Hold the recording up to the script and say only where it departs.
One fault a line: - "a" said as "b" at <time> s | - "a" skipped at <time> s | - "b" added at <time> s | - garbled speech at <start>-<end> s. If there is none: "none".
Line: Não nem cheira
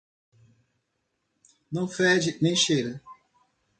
- "fede" added at 1.9 s